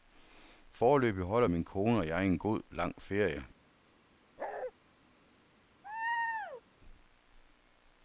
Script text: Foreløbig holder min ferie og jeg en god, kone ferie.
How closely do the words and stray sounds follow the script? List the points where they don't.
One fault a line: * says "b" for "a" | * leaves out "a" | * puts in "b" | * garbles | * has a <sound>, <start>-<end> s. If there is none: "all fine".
* says "kone" for "ferie"
* says "lang" for "kone"
* has a bark, 4.4-4.7 s
* has a laugh, 5.8-6.6 s